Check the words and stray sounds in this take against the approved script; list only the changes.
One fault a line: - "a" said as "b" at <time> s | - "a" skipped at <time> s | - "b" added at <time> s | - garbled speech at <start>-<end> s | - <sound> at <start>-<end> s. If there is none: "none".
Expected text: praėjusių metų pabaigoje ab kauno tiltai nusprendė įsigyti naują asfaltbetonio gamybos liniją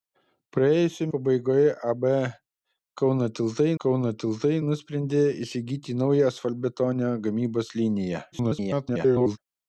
- "metų" skipped at 1.1 s
- "kauno tiltai" added at 3.9 s
- garbled speech at 8.3-9.4 s